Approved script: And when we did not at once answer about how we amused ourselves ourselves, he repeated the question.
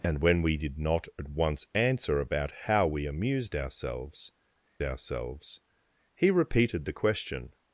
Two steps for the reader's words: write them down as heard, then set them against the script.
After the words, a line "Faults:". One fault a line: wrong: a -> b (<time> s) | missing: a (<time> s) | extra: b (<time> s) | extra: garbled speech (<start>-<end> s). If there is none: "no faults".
And when we did not at once answer about how we amused ourselves ourselves, he repeated the question.
Faults:
no faults